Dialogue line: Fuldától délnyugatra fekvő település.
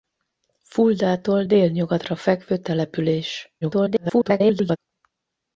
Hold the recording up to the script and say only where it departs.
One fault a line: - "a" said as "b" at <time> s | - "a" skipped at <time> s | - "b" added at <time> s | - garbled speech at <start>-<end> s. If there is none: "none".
- garbled speech at 3.6-4.8 s